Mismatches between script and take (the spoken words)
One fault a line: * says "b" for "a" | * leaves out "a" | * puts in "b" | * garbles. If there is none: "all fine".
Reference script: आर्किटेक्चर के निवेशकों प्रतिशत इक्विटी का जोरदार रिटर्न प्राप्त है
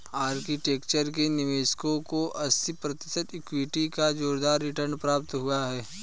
* puts in "को अस्सी"
* puts in "हुआ"